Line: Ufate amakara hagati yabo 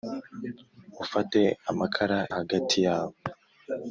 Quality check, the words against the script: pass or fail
pass